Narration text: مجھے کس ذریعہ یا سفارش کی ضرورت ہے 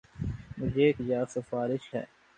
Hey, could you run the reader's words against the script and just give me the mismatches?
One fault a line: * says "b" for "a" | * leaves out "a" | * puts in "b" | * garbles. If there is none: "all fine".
* leaves out "کس ذریعہ"
* leaves out "کی ضرورت"